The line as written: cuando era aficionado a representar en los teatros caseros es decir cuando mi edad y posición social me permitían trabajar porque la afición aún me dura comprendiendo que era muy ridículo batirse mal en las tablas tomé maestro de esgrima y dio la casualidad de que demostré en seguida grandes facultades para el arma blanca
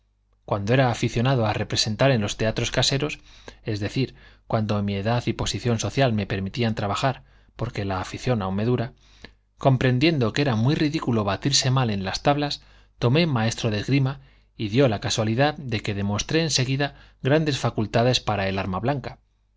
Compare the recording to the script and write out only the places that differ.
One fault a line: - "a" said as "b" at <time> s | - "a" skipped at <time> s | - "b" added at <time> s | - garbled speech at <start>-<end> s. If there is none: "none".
none